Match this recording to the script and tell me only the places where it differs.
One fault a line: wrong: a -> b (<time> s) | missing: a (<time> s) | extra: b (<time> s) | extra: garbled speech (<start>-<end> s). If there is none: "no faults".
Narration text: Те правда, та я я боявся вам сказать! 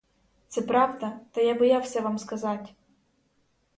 wrong: Те -> Це (0.5 s)
missing: я (1.6 s)